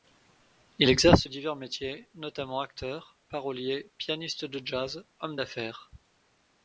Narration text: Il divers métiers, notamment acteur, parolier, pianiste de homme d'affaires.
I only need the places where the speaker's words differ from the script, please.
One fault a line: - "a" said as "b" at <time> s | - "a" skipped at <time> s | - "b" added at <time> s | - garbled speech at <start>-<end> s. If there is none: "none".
- "exerce" added at 0.9 s
- "jazz" added at 4.6 s